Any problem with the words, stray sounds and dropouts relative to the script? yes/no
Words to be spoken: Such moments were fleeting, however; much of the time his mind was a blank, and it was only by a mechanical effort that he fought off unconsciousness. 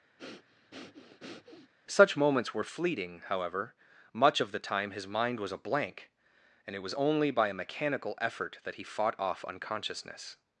yes